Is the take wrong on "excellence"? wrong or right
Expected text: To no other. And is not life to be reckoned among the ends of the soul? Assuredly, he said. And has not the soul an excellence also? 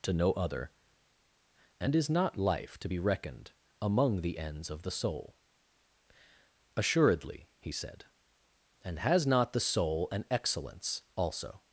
right